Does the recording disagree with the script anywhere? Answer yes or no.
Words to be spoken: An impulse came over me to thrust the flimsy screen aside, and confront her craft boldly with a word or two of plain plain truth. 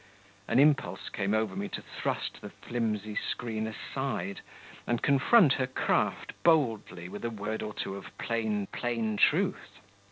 no